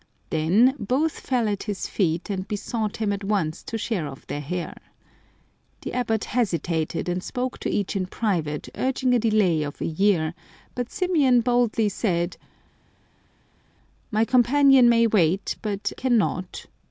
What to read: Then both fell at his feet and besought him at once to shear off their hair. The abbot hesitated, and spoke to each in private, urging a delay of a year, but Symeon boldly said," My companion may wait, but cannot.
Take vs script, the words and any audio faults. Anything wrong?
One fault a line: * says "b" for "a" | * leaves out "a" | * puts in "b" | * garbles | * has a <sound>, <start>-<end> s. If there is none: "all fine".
all fine